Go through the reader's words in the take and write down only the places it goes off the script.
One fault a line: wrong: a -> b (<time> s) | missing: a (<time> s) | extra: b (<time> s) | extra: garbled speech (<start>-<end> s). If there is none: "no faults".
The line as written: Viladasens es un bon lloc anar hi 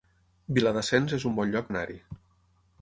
no faults